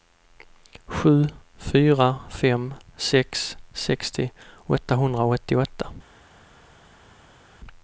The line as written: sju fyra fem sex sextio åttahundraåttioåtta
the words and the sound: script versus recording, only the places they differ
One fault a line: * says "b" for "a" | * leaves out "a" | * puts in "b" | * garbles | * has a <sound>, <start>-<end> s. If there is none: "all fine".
all fine